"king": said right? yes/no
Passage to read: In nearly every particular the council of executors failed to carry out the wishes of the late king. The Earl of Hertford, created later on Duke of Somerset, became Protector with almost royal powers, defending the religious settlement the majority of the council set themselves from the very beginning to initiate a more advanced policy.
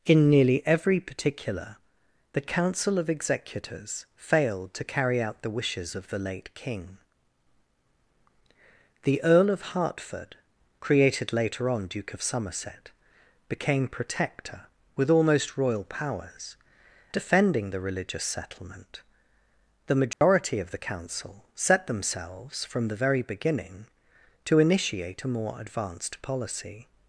yes